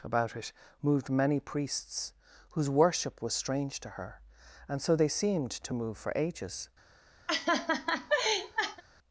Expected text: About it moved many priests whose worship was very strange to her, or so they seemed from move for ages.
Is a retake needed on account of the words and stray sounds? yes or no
yes